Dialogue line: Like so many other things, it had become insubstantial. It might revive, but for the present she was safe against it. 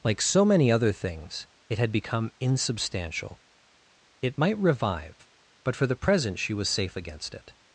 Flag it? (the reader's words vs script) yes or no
no